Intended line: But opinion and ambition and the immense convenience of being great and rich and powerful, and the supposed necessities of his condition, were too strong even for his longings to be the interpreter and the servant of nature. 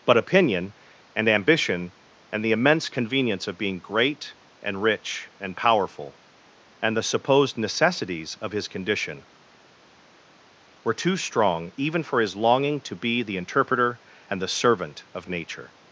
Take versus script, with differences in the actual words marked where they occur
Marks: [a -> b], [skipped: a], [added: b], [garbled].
But opinion and ambition and the immense convenience of being great and rich and powerful, and the supposed necessities of his condition, were too strong even for his [longings -> longing] to be the interpreter and the servant of nature.